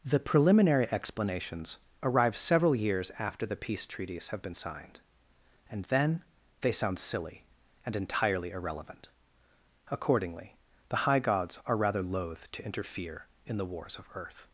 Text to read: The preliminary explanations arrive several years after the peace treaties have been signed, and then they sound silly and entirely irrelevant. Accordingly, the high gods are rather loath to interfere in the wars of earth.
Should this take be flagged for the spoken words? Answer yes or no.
no